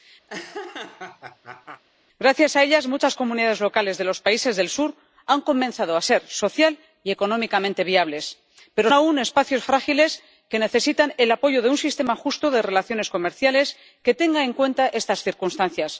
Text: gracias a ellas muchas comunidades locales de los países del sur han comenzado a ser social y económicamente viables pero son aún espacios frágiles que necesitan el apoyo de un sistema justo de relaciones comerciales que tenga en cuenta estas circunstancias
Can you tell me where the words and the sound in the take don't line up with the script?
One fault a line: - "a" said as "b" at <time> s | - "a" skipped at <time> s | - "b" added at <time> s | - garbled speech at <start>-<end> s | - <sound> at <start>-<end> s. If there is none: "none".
- laugh at 0.3-1.8 s
- "son" skipped at 8.9 s